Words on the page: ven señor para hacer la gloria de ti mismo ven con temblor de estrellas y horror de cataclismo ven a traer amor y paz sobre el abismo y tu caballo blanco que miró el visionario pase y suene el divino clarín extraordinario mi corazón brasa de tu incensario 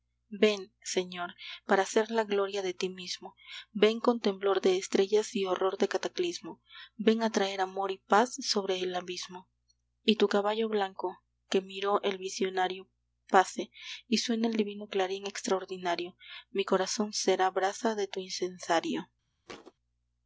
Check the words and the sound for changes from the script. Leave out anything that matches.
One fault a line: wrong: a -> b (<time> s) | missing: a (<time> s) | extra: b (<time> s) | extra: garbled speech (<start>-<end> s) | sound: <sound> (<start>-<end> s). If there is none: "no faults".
extra: será (17.1 s)
sound: thud (19.5-19.7 s)